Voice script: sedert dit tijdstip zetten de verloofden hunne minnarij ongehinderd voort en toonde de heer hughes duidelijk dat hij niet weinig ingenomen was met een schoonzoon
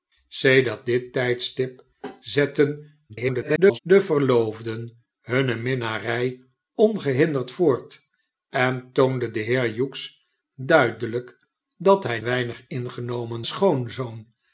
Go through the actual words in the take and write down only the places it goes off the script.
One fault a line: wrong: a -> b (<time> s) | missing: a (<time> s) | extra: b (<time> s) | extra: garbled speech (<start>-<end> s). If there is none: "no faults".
extra: garbled speech (3.1-3.8 s)
missing: niet (12.2 s)
missing: was met een (13.4 s)